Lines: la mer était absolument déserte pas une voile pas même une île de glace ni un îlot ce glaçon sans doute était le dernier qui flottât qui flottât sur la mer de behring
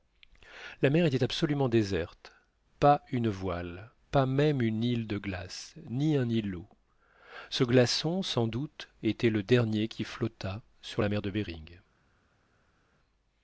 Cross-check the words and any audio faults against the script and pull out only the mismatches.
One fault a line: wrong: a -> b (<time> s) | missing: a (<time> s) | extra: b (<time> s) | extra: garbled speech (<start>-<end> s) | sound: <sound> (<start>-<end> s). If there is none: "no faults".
missing: qui flottât (10.6 s)